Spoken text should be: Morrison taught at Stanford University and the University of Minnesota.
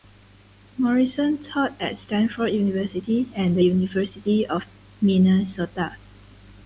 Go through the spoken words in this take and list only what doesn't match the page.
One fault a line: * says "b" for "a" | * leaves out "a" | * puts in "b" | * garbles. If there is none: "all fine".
all fine